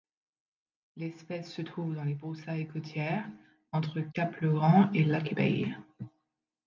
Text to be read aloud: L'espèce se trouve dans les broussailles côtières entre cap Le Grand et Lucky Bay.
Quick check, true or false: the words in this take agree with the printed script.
true